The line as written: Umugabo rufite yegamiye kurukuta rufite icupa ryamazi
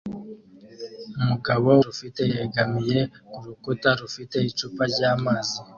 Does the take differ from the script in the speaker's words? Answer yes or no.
no